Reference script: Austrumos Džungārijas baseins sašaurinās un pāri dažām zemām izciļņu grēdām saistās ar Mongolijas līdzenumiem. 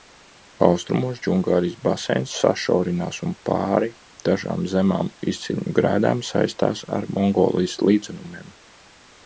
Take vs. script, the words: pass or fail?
pass